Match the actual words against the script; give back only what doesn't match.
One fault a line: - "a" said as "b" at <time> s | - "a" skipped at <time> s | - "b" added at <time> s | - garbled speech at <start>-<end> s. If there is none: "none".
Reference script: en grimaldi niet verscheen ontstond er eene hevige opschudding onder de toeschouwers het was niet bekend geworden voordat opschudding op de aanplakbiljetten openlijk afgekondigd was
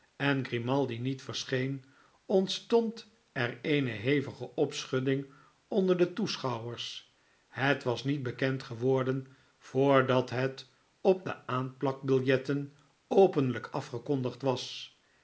- "opschudding" said as "het" at 10.3 s